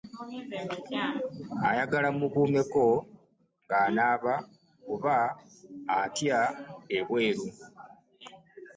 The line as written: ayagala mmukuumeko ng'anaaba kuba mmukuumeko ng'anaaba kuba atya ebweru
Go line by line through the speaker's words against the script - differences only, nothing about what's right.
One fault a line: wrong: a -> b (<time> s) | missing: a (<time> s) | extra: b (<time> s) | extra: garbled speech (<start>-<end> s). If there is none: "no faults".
missing: mmukuumeko ng'anaaba kuba (5.2 s)